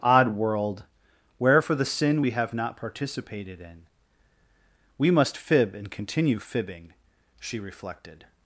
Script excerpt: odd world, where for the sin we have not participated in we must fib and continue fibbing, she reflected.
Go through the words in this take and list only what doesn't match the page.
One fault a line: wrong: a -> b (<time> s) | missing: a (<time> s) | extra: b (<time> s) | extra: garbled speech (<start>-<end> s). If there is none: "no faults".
no faults